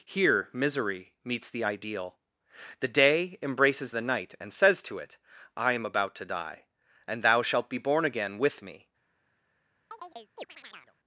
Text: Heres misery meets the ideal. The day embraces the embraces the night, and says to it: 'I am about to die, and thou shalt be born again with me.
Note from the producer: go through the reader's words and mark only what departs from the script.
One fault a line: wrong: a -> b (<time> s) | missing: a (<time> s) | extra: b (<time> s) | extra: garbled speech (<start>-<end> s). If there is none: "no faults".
wrong: Heres -> Here (0.1 s)
missing: embraces the (4.0 s)